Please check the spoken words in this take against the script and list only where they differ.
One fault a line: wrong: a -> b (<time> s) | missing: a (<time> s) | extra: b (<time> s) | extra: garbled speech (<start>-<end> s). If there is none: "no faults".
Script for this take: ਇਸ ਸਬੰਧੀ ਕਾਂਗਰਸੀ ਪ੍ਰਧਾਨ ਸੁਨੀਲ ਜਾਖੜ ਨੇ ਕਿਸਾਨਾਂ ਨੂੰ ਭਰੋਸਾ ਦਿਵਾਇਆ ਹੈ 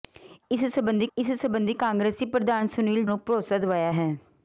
extra: ਇਸ ਸਬੰਧੀ (1.2 s)
missing: ਜਾਖੜ ਨੇ ਕਿਸਾਨਾਂ (3.0 s)